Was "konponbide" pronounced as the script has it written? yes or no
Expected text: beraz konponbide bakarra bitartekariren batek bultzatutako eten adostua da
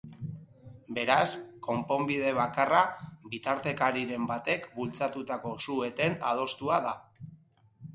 yes